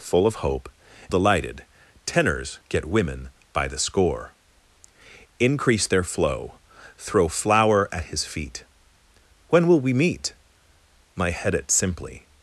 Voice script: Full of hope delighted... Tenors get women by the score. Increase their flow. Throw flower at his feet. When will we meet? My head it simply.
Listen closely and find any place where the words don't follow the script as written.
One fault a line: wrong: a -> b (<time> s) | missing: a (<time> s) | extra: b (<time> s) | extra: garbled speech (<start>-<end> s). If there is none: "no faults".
no faults